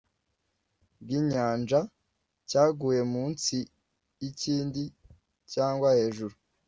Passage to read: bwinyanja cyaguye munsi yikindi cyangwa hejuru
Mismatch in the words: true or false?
false